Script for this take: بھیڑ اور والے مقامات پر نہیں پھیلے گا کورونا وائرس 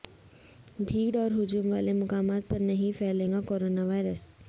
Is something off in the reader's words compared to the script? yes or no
yes